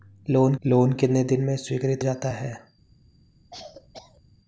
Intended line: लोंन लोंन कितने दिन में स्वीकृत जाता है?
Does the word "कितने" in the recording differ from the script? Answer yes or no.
no